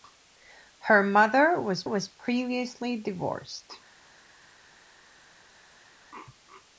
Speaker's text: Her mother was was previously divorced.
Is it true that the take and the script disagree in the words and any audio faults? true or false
false